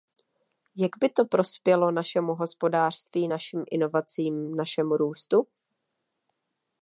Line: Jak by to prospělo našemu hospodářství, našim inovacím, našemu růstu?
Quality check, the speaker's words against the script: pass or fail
pass